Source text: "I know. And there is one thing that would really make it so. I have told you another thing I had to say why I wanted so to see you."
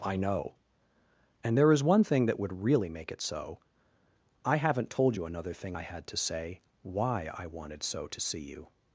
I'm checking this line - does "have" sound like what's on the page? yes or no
no